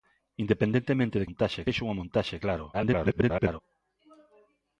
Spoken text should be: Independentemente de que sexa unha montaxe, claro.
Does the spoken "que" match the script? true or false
false